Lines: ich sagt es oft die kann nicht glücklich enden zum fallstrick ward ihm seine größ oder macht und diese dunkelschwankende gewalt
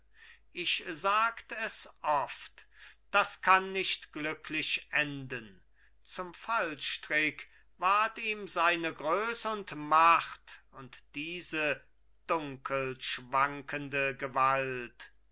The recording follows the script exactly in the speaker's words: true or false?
false